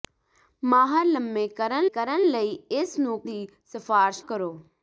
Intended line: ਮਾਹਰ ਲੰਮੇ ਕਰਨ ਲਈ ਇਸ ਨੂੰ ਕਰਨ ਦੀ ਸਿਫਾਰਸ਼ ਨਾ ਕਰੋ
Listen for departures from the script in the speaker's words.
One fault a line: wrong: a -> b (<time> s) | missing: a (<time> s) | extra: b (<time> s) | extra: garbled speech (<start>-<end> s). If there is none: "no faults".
extra: ਕਰਨ (1.9 s)
missing: ਕਰਨ (3.2 s)
missing: ਨਾ (4.2 s)